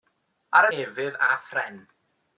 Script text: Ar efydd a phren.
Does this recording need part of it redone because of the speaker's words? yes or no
no